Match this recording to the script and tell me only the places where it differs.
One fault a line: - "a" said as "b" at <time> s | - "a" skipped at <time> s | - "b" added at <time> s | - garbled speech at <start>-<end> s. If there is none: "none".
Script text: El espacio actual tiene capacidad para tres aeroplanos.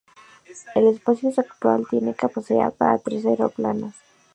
none